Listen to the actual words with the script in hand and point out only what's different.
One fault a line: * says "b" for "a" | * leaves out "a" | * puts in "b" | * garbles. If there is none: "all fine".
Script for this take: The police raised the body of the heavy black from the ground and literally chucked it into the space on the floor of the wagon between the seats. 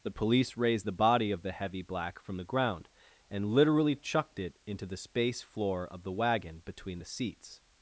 * leaves out "on the"